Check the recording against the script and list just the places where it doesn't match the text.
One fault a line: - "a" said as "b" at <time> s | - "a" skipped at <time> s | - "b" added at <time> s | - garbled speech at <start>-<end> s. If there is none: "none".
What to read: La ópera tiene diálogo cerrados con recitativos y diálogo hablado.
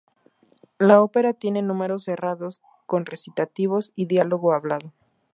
- "diálogo" said as "números" at 1.6 s